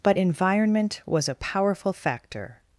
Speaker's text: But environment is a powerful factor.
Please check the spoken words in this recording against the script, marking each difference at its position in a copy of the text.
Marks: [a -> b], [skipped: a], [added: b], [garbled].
But environment [is -> was] a powerful factor.